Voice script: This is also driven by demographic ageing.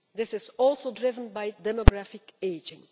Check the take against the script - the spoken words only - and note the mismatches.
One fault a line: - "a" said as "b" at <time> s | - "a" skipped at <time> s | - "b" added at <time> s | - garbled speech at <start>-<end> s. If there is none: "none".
none